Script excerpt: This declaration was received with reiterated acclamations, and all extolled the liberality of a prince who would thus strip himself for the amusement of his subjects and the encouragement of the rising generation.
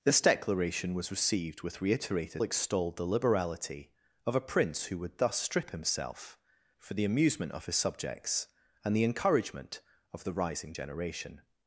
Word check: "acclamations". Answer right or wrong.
wrong